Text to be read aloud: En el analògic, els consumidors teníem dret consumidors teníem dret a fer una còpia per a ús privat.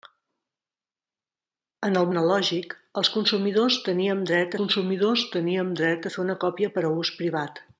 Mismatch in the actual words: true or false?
false